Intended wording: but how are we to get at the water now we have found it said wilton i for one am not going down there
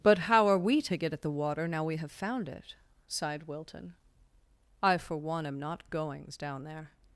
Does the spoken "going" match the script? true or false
false